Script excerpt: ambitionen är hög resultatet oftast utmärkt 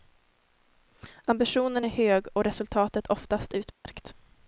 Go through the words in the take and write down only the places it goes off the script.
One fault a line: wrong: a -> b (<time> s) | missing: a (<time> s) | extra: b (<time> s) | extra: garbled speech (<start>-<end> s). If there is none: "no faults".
extra: och (2.3 s)